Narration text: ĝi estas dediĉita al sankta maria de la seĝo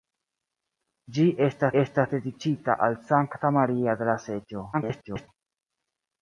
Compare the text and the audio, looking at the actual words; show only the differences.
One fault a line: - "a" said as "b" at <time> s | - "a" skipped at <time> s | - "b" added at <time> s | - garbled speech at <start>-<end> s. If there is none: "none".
- "estas" added at 1.8 s
- garbled speech at 4.7-5.3 s